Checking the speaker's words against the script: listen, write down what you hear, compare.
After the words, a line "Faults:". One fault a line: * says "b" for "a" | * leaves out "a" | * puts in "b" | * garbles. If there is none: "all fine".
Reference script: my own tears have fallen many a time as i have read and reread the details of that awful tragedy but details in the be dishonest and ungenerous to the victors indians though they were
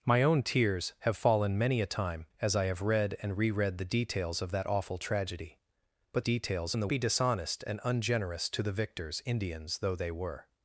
my own tears have fallen many a time as i have read and reread the details of that awful tragedy but details in the be dishonest and ungenerous to the victors indians though they were
Faults:
all fine